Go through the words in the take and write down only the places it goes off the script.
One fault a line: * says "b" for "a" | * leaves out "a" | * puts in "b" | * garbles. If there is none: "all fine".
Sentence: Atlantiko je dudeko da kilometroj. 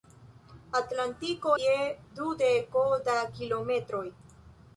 all fine